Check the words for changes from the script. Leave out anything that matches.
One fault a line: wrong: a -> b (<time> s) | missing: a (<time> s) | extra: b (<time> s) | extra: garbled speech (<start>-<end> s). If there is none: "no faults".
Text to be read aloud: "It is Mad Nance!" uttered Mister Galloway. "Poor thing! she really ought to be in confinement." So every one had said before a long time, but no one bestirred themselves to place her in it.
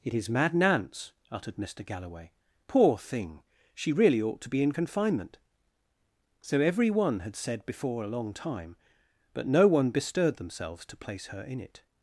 no faults